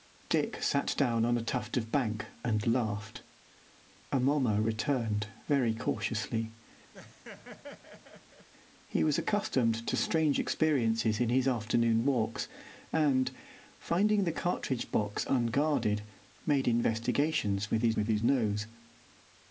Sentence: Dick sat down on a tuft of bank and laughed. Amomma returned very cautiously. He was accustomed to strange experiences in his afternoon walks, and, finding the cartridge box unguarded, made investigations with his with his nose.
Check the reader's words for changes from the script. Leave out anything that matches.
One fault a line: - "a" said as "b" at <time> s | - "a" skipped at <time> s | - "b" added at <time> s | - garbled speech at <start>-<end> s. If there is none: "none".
none